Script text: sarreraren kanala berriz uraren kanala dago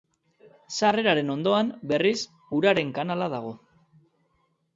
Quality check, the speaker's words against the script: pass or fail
fail